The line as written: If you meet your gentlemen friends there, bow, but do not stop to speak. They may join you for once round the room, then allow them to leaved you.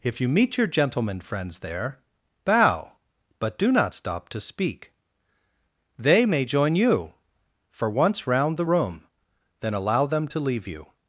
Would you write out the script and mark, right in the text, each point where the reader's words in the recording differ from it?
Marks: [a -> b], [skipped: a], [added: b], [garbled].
If you meet your gentlemen friends there, bow, but do not stop to speak. They may join you for once round the room, then allow them to [leaved -> leave] you.